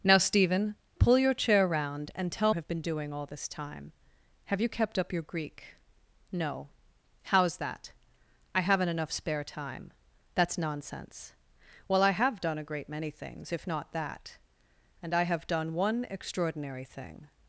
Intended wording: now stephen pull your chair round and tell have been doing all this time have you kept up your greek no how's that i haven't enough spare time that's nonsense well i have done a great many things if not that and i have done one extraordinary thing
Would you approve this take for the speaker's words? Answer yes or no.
yes